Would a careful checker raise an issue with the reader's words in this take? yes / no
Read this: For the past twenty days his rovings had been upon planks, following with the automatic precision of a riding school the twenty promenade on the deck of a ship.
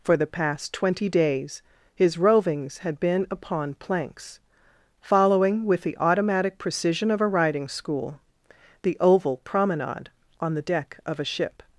yes